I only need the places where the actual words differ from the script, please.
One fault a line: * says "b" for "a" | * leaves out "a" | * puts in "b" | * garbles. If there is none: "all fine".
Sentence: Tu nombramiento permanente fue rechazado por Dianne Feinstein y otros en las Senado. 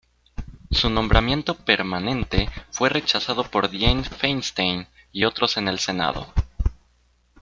* says "Su" for "Tu"
* says "el" for "las"